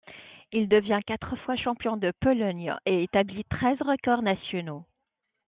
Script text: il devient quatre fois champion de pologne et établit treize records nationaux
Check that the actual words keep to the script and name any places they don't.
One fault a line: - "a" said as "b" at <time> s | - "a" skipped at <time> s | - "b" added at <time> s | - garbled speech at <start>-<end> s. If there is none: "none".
none